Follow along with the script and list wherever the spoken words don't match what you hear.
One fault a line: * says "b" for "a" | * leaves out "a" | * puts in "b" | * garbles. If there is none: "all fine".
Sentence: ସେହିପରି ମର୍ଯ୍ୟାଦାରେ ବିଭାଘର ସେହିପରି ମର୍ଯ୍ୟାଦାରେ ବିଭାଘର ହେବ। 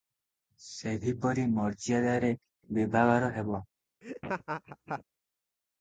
* leaves out "ସେହିପରି ମର୍ଯ୍ୟାଦାରେ ବିଭାଘର"